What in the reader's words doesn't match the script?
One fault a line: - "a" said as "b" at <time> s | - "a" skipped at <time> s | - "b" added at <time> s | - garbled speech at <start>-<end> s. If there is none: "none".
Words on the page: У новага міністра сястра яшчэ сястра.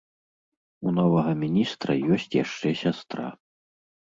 - "сястра" said as "ёсць" at 2.1 s